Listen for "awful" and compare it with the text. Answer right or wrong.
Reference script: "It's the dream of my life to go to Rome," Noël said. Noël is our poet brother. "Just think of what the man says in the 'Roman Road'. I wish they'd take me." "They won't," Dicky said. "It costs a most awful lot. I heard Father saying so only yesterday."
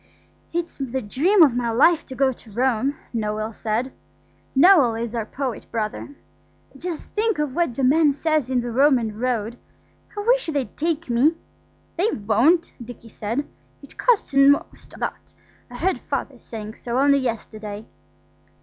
wrong